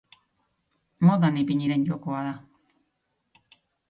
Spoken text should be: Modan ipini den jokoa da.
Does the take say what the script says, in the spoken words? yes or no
yes